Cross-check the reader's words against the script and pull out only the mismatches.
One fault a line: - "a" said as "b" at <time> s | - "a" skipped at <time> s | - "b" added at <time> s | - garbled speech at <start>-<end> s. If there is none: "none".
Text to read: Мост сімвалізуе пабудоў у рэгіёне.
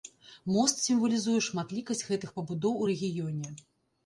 - "шматлікасць гэтых" added at 1.5 s